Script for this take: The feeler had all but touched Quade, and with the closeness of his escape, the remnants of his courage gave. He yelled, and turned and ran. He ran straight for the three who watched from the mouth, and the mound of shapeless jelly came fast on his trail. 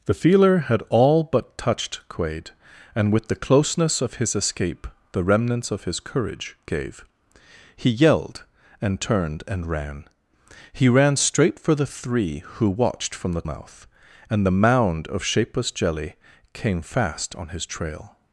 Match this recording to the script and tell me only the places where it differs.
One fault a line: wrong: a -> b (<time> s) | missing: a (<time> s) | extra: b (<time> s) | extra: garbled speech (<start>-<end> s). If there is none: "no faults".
no faults